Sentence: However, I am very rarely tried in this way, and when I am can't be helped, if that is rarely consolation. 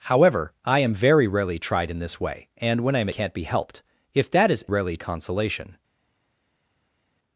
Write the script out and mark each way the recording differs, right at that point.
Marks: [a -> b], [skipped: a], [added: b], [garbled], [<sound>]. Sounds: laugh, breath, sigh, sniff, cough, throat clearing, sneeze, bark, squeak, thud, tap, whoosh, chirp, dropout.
However, I am very rarely tried in this way, and when I am can't be helped, if that is rarely consolation.